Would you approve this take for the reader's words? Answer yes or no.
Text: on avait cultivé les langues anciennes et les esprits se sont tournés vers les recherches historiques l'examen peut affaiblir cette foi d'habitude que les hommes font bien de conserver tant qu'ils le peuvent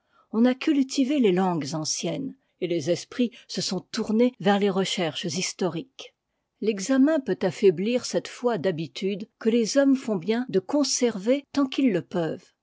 no